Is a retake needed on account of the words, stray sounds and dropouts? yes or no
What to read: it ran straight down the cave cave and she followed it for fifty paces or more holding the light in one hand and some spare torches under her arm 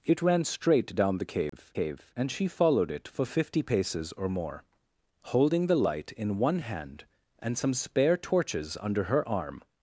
yes